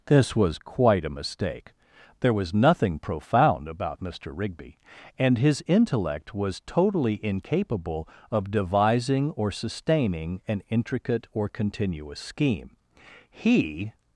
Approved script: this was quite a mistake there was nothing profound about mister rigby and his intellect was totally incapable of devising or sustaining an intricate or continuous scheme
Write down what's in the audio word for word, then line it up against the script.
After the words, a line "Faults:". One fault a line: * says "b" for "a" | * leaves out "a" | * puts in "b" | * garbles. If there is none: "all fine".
this was quite a mistake there was nothing profound about mister rigby and his intellect was totally incapable of devising or sustaining an intricate or continuous scheme he
Faults:
* puts in "he"